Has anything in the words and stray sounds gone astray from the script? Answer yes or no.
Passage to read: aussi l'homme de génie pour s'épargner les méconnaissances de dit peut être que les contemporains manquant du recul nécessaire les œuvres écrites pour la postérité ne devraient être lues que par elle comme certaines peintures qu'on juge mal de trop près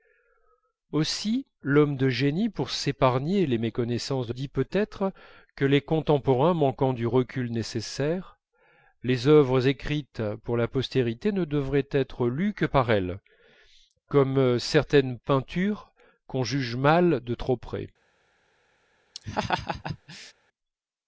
yes